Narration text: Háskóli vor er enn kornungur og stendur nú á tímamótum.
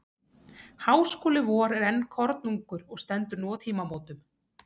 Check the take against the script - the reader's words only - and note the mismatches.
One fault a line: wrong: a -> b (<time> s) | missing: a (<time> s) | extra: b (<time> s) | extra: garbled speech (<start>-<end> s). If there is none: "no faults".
no faults